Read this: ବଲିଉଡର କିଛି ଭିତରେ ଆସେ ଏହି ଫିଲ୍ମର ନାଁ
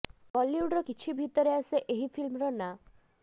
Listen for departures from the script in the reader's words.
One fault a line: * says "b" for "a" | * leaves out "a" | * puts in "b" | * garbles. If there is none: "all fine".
all fine